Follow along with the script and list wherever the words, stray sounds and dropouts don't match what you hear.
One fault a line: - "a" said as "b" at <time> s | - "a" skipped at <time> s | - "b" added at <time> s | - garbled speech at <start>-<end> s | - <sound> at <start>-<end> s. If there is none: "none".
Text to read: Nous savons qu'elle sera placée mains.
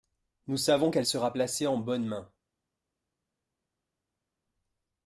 - "en bonnes" added at 1.7 s